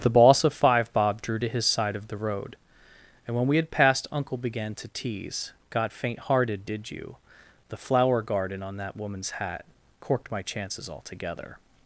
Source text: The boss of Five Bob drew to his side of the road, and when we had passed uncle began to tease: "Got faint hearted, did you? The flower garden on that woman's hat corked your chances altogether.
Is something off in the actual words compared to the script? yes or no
yes